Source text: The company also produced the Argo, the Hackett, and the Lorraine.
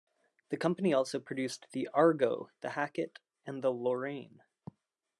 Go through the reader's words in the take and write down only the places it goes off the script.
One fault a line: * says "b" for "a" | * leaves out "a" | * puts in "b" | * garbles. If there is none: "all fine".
all fine